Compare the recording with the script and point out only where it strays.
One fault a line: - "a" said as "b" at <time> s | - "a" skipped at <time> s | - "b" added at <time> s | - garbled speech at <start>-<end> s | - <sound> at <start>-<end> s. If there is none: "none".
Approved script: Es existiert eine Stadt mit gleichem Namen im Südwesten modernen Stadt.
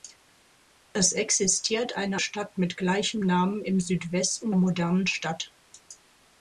none